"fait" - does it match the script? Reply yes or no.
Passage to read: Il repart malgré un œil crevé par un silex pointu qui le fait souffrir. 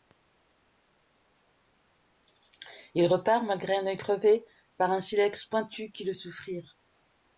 no